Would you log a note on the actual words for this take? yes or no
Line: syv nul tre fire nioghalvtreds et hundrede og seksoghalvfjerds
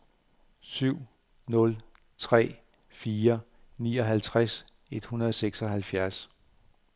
no